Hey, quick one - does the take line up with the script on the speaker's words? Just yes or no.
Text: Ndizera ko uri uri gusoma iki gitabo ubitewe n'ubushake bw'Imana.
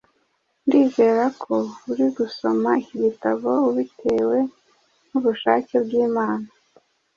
no